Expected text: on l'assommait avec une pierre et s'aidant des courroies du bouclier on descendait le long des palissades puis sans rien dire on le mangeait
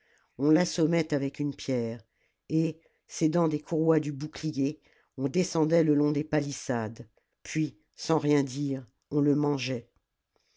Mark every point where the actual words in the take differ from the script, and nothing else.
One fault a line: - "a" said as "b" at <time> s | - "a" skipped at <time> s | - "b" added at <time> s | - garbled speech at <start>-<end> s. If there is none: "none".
none